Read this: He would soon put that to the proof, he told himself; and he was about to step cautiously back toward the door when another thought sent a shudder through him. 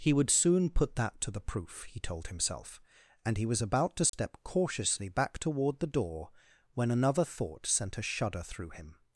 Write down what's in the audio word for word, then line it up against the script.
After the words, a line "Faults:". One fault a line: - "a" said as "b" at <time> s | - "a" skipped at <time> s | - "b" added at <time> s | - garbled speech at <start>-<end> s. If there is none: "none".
He would soon put that to the proof, he told himself; and he was about to step cautiously back toward the door when another thought sent a shudder through him.
Faults:
none